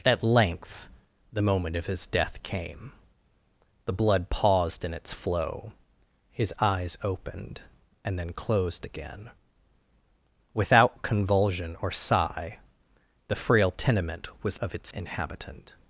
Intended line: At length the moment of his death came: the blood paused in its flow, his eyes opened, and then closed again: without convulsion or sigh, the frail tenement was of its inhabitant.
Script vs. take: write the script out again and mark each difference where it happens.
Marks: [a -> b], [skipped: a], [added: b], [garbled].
At length the moment of his death came: the blood paused in its flow, his eyes opened, and then closed again: without convulsion or sigh, the frail tenement was of its inhabitant.